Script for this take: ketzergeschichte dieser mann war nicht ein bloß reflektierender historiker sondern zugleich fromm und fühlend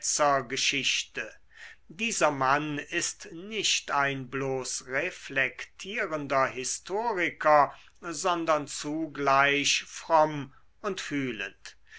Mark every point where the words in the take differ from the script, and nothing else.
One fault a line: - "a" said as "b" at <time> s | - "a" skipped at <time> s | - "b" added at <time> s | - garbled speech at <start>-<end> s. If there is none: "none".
- "war" said as "ist" at 2.8 s